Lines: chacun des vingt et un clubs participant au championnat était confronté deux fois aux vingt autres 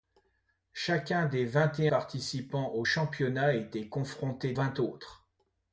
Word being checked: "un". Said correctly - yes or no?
no